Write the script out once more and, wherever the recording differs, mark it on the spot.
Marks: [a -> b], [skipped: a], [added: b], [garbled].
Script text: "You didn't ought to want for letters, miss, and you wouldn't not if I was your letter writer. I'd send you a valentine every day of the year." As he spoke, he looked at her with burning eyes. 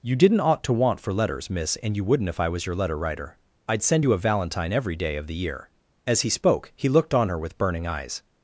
"You didn't ought to want for letters, miss, and you wouldn't [skipped: not] if I was your letter writer. I'd send you a valentine every day of the year." As he spoke, he looked [at -> on] her with burning eyes.